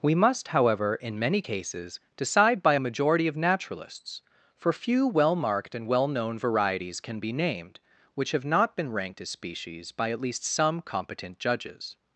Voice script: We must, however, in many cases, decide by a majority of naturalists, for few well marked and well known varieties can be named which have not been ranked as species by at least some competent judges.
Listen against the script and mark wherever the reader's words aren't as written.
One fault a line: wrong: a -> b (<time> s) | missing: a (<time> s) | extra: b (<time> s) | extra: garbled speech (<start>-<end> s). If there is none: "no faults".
no faults